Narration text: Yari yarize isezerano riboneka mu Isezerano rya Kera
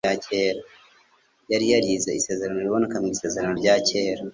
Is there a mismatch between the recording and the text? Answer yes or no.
no